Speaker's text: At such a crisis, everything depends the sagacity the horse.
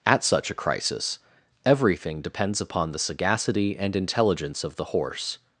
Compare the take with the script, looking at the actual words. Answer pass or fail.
fail